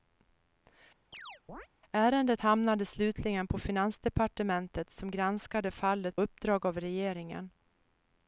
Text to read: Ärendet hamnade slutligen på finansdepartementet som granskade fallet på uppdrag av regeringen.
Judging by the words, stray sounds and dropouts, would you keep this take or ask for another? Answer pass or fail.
fail